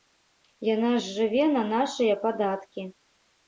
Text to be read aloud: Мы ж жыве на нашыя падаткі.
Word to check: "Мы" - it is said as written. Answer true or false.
false